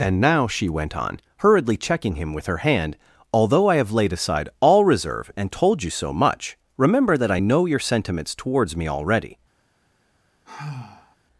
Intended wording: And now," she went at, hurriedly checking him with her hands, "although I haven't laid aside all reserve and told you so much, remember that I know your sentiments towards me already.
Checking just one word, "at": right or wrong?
wrong